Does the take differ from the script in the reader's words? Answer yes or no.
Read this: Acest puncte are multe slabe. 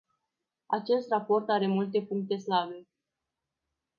yes